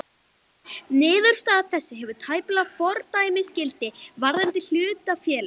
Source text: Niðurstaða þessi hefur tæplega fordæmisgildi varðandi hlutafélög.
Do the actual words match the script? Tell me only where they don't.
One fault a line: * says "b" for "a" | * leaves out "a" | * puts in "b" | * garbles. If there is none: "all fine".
all fine